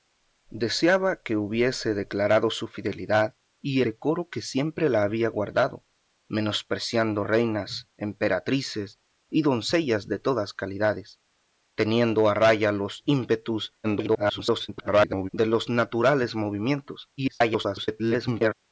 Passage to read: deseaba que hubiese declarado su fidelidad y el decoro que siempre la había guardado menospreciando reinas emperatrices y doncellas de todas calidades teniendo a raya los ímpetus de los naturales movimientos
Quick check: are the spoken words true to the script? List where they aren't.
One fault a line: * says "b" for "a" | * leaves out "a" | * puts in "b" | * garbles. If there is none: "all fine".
* leaves out "el"
* garbles
* garbles